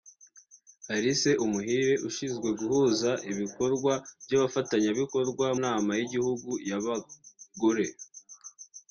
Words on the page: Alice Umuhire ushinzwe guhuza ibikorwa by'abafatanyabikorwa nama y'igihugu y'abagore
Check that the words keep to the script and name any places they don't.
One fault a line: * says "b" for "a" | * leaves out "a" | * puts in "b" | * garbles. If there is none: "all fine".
all fine